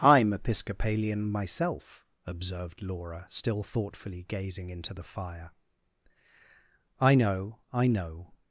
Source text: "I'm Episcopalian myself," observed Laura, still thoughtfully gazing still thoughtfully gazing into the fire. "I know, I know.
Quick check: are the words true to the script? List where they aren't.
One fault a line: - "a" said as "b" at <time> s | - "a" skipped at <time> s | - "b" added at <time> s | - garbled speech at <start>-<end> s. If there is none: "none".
- "still thoughtfully gazing" skipped at 4.7 s